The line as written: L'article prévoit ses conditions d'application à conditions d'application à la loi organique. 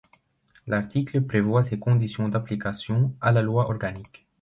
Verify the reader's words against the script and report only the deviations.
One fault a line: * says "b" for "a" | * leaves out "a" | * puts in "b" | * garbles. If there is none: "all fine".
* leaves out "conditions d'application à"